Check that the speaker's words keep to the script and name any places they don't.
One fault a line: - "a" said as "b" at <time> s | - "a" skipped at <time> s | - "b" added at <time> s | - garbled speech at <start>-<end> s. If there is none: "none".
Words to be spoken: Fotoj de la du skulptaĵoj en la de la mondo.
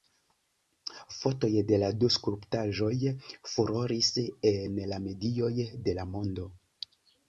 - "furoris" added at 3.5 s
- "medioj" added at 5.1 s